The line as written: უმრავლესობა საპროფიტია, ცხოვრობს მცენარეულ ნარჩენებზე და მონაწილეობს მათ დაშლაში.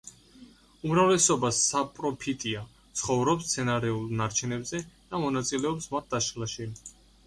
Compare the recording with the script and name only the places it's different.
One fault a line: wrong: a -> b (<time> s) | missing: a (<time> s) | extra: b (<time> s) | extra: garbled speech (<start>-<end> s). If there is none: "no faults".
no faults